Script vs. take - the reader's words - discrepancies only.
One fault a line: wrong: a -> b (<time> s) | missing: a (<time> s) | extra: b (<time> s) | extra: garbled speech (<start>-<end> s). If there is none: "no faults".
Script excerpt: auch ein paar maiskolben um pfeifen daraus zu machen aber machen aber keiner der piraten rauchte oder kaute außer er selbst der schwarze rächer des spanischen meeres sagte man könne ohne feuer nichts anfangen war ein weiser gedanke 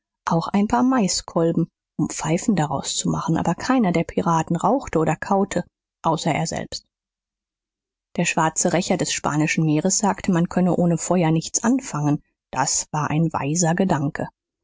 missing: machen aber (3.5 s)
extra: das (12.5 s)